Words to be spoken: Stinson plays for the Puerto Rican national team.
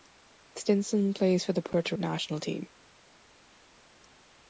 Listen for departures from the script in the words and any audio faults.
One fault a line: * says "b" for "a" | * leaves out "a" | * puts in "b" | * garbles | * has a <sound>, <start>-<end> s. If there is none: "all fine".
* leaves out "Rican"